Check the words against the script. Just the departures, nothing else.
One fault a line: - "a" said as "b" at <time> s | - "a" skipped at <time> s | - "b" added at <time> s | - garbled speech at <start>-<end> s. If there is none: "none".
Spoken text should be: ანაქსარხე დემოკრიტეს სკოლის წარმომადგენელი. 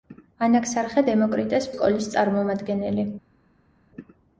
none